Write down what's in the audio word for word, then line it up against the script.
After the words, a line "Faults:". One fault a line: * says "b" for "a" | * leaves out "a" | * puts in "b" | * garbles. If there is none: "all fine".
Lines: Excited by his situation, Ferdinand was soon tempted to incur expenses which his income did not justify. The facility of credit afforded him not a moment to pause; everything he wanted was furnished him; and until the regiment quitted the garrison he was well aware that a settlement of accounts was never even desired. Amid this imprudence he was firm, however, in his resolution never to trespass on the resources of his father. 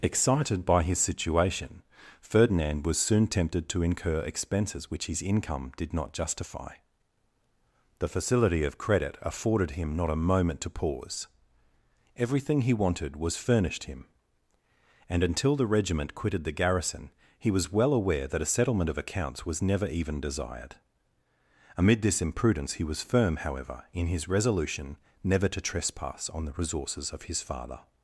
Excited by his situation, Ferdinand was soon tempted to incur expenses which his income did not justify. The facility of credit afforded him not a moment to pause; everything he wanted was furnished him; and until the regiment quitted the garrison he was well aware that a settlement of accounts was never even desired. Amid this imprudence he was firm, however, in his resolution never to trespass on the resources of his father.
Faults:
all fine